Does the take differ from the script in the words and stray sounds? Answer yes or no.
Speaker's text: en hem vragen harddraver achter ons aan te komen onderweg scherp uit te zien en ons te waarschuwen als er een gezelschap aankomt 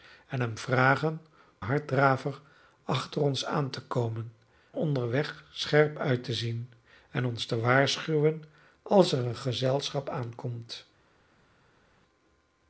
no